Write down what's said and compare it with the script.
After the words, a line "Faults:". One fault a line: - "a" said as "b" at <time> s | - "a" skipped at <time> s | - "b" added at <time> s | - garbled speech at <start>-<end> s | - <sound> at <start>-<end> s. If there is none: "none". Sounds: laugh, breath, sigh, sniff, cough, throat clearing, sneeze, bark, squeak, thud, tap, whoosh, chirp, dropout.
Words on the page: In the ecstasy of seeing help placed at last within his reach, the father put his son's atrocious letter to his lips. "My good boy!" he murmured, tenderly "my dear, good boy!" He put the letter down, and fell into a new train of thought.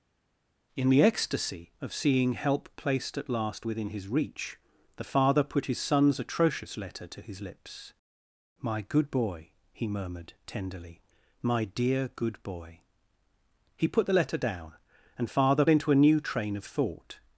In the ecstasy of seeing help placed at last within his reach, the father put his son's atrocious letter to his lips. "My good boy!" he murmured, tenderly "my dear, good boy!" He put the letter down, and father into a new train of thought.
Faults:
- "fell" said as "father" at 15.2 s